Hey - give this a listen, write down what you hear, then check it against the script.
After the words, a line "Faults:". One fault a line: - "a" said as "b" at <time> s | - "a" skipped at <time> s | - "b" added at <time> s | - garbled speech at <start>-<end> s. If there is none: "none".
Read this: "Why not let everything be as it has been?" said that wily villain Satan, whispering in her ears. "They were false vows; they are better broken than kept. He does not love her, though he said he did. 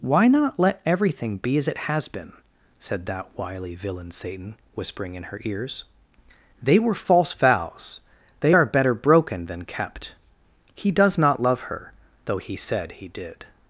"Why not let everything be as it has been?" said that wily villain Satan, whispering in her ears. "They were false vows; they are better broken than kept. He does not love her, though he said he did.
Faults:
none